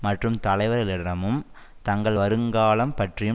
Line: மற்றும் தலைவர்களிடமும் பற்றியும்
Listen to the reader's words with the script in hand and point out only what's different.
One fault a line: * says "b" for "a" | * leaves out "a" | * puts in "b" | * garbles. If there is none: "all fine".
* puts in "தங்கள் வருங்காலம்"